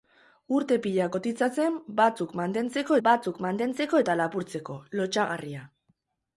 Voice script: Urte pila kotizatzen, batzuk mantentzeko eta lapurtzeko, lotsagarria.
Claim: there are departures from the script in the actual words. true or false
true